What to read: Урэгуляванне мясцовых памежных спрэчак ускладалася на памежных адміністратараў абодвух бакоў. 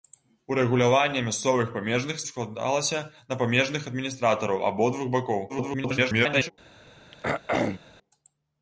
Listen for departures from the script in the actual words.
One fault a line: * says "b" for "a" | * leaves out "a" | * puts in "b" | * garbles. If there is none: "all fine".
* leaves out "спрэчак"
* garbles